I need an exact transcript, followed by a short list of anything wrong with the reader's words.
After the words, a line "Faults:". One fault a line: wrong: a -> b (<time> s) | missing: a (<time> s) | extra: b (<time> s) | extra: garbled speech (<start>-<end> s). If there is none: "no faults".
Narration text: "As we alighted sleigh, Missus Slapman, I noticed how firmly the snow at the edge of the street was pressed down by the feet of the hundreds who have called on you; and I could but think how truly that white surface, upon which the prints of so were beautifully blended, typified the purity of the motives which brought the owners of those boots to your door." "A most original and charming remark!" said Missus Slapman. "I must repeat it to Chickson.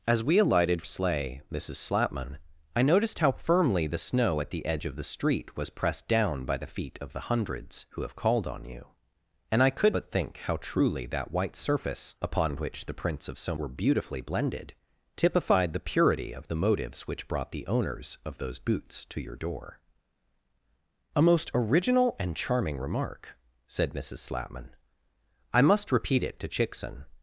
"As we alighted sleigh, Missus Slapman, I noticed how firmly the snow at the edge of the street was pressed down by the feet of the hundreds who have called on you; and I could but think how truly that white surface, upon which the prints of so were beautifully blended, typified the purity of the motives which brought the owners of those boots to your door." "A most original and charming remark!" said Missus Slapman. "I must repeat it to Chickson.
Faults:
no faults